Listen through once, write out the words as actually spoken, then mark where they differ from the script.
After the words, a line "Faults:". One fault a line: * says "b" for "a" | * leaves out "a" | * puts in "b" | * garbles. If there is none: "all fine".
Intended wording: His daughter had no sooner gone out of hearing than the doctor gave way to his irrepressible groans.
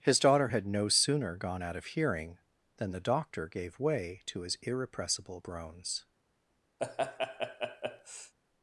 His daughter had no sooner gone out of hearing than the doctor gave way to his irrepressible groans.
Faults:
all fine